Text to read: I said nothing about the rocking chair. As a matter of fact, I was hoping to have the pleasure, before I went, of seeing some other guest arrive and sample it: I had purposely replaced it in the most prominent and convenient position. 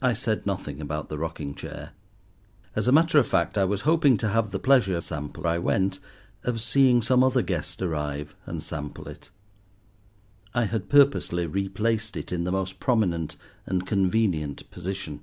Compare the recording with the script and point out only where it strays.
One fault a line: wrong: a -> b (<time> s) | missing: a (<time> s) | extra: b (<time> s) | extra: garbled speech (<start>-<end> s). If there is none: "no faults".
wrong: before -> sample (5.0 s)